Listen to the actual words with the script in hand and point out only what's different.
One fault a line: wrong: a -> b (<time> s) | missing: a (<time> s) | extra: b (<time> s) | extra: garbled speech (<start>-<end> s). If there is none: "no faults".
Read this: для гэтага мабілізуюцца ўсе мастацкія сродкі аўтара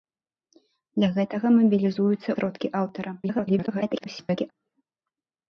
missing: ўсе мастацкія (2.3 s)
extra: garbled speech (3.2-4.5 s)